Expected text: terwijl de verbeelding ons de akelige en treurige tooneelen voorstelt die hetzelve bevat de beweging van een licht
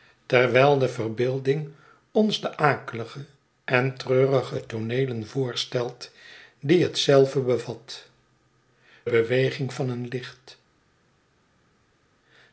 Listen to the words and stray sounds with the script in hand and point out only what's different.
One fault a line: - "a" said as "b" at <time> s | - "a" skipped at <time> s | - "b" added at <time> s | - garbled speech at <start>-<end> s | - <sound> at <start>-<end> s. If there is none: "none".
- "de" skipped at 8.1 s